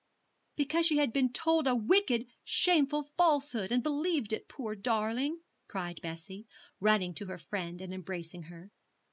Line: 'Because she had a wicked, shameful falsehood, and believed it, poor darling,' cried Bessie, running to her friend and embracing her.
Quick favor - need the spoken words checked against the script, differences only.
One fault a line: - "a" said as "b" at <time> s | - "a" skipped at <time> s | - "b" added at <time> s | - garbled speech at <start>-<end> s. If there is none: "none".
- "been told" added at 1.1 s